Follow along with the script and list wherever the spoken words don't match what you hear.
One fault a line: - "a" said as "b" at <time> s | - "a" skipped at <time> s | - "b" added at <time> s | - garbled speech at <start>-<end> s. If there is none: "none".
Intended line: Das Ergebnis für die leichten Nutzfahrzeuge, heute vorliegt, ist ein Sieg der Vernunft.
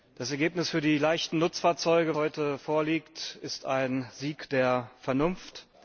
none